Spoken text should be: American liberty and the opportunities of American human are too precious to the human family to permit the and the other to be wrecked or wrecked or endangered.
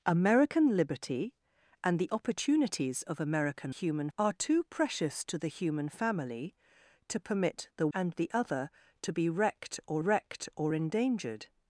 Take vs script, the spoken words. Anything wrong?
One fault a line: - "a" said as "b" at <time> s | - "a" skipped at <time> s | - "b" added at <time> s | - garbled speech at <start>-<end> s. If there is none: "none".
none